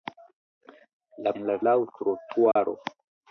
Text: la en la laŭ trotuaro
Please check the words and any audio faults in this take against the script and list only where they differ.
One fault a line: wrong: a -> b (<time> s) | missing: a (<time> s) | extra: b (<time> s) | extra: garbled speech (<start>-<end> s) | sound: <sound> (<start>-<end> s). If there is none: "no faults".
sound: dropout (2.5-2.6 s)